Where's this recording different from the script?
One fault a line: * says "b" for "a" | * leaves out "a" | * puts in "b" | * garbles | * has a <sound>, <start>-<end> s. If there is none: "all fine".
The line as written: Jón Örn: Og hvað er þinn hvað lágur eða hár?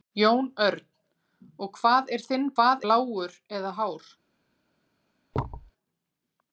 * has a thud, 5.3-5.7 s